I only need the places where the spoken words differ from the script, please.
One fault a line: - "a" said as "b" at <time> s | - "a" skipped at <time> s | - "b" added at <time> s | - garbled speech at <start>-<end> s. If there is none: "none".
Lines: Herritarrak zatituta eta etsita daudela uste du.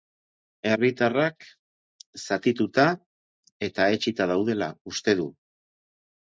none